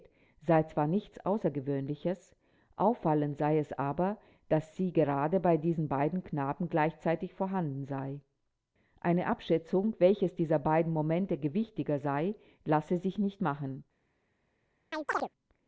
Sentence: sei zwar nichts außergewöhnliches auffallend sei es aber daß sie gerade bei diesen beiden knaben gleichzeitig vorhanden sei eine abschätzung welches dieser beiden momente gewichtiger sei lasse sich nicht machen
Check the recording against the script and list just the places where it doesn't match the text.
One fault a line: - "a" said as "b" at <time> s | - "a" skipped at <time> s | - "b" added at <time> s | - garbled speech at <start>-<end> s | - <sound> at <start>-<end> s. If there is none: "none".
- chirp at 14.9-15.3 s